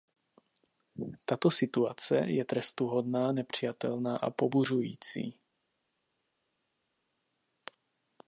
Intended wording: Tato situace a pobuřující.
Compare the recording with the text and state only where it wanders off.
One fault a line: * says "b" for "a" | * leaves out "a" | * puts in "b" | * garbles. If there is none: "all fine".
* puts in "je trestuhodná nepřijatelná"